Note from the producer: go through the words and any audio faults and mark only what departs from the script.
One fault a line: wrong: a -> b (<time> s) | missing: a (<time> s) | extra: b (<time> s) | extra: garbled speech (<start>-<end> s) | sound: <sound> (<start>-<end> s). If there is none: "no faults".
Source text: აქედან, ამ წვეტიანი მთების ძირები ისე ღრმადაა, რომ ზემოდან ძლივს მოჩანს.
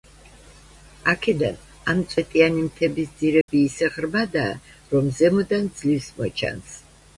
sound: dropout (3.4-3.5 s)